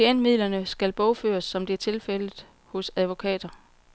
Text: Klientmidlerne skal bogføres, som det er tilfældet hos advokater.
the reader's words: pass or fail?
pass